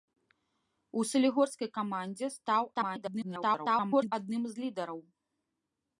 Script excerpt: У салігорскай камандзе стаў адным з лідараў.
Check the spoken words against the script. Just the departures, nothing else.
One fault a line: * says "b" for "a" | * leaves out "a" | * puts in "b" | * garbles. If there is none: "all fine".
* garbles